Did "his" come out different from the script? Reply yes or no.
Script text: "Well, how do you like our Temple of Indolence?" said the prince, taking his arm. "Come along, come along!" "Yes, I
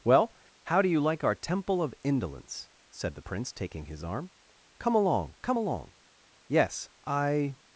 no